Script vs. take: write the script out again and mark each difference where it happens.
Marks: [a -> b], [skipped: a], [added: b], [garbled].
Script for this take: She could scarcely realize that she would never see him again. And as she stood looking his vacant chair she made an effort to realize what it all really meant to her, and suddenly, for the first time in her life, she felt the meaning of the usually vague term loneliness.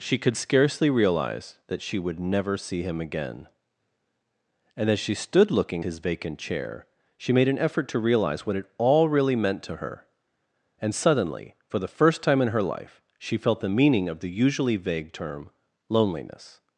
She could scarcely realize that she would never see him again. And as she stood looking his vacant chair she made an effort to realize what it all really meant to her, and suddenly, for the first time in her life, she felt the meaning of the usually vague term loneliness.